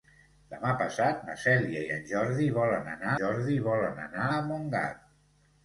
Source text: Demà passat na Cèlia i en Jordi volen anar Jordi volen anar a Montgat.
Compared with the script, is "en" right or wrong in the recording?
right